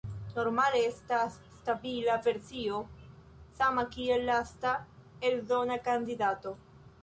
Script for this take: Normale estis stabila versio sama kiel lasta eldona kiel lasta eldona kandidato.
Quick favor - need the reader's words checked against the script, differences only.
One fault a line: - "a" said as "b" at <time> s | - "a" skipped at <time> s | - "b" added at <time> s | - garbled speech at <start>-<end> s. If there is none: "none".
- "estis" said as "estas" at 0.8 s
- "kiel lasta eldona" skipped at 5.8 s